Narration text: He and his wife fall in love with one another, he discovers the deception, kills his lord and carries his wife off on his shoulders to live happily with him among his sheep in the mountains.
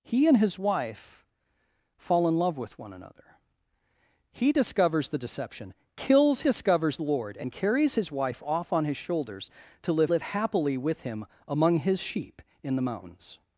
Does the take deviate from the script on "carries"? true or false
false